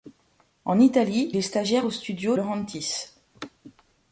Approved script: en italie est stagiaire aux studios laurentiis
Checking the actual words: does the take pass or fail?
pass